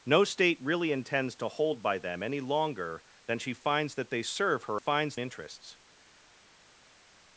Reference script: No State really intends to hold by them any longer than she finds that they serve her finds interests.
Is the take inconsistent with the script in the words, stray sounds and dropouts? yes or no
no